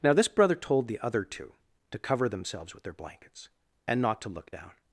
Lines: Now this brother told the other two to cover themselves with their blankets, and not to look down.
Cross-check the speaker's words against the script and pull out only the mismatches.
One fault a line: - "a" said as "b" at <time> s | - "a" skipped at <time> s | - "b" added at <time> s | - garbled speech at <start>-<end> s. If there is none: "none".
none